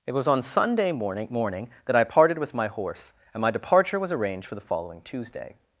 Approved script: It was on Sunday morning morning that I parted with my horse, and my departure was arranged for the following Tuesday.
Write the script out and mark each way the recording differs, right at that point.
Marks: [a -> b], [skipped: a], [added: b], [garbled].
It was on Sunday morning morning that I parted with my horse, and my departure was arranged for the following Tuesday.